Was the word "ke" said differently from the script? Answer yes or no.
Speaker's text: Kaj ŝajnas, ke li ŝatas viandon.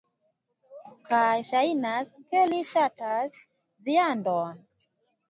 no